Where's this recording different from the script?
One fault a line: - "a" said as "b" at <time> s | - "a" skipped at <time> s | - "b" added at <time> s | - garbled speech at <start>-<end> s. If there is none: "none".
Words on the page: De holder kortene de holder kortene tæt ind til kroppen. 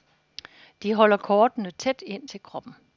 - "de holder kortene" skipped at 1.7 s